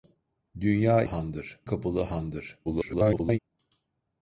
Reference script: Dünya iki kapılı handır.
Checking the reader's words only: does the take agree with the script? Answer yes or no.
no